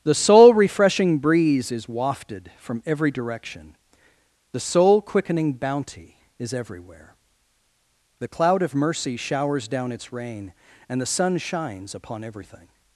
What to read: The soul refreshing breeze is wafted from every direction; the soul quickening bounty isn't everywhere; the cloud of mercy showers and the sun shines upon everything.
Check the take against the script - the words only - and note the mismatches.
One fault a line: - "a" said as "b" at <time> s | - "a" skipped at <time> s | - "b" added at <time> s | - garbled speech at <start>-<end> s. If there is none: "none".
- "isn't" said as "is" at 6.4 s
- "down its rain" added at 9.7 s